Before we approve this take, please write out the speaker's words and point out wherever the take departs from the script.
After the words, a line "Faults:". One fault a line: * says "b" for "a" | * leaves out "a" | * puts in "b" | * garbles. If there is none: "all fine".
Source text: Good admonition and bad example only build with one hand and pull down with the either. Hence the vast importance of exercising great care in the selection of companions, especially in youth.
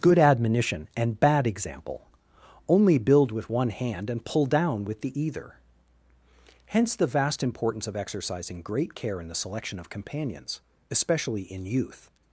Good admonition and bad example only build with one hand and pull down with the either. Hence the vast importance of exercising great care in the selection of companions, especially in youth.
Faults:
all fine